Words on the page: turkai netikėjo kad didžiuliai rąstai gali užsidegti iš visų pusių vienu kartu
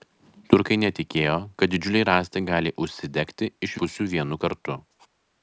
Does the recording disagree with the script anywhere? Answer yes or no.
yes